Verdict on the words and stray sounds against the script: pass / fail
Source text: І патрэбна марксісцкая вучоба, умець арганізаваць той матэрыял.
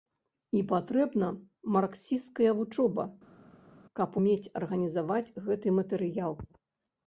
fail